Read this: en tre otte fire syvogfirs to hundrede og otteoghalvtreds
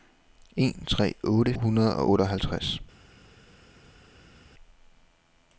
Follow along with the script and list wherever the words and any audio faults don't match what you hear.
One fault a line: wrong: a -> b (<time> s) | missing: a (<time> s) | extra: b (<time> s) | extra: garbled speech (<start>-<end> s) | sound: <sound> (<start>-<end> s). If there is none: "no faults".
missing: fire syvogfirs to (1.5 s)